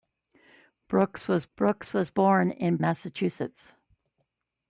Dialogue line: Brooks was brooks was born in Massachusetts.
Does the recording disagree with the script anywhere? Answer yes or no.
no